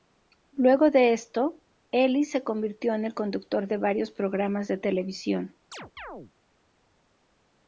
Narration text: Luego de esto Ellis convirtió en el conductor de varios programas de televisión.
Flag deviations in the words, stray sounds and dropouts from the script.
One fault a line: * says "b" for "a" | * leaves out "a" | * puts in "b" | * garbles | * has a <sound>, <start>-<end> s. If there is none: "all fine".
* puts in "se"
* has a chirp, 5.7-6.3 s